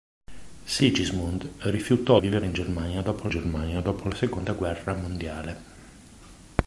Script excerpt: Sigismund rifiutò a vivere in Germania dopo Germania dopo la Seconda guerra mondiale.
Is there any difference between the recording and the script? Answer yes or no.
no